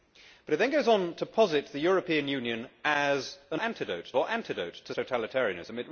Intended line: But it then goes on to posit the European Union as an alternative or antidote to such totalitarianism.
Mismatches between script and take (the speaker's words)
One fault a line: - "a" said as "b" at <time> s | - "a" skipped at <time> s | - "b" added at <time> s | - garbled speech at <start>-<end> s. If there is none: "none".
- "alternative" said as "antidote" at 3.6 s
- "such" skipped at 4.9 s